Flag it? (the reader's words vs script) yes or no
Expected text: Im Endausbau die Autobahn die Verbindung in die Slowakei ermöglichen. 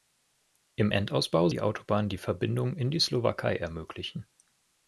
no